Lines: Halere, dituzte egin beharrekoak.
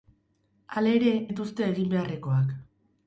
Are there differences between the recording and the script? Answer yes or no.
no